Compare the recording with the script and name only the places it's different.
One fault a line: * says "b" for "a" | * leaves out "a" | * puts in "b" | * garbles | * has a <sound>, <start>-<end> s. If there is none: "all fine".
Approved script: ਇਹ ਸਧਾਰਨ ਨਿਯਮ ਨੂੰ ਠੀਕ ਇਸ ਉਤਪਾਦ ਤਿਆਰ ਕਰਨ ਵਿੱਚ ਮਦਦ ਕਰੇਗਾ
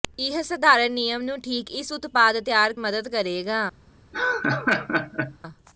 * leaves out "ਕਰਨ ਵਿੱਚ"
* has a laugh, 4.1-5.4 s